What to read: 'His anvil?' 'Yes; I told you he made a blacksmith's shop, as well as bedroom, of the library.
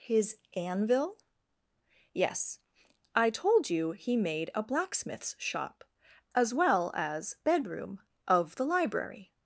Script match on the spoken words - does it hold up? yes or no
yes